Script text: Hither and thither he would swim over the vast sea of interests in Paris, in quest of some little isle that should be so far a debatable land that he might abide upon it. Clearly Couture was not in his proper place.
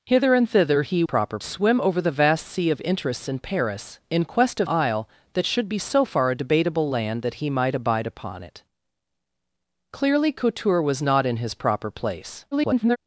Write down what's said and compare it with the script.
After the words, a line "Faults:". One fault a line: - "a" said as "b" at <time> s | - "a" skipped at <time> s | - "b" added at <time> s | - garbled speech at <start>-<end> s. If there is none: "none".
Hither and thither he proper swim over the vast sea of interests in Paris, in quest of isle that should be so far a debatable land that he might abide upon it. Clearly Couture was not in his proper place. [garbled]
Faults:
- "would" said as "proper" at 1.0 s
- "some little" skipped at 4.7 s
- garbled speech at 12.5-13.0 s